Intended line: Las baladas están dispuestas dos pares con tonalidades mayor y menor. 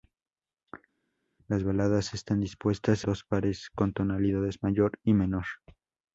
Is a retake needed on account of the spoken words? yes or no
no